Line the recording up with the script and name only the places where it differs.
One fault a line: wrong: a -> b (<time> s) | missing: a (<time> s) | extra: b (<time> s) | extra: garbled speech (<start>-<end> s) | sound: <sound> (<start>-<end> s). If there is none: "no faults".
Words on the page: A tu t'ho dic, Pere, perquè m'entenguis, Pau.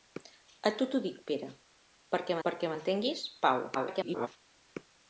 extra: perquè (2.5 s)
extra: garbled speech (3.7-4.3 s)